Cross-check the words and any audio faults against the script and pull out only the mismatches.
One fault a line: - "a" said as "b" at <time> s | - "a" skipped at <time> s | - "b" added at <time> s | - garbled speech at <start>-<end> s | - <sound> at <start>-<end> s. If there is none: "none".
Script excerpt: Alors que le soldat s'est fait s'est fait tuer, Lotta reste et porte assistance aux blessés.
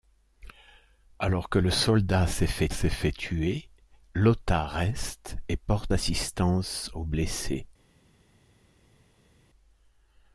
none